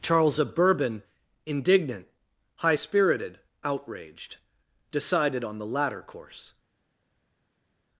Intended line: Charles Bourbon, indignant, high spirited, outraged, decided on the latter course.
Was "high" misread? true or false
false